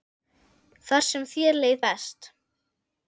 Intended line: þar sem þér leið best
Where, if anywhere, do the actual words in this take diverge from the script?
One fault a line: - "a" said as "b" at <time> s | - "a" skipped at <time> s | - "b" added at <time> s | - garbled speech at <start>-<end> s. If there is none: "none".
none